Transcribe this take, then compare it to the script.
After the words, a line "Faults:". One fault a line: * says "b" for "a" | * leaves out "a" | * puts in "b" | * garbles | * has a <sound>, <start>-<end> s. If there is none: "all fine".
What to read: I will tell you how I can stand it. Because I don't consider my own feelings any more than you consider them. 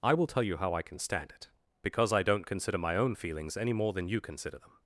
I will tell you how I can stand it. Because I don't consider my own feelings any more than you consider them.
Faults:
all fine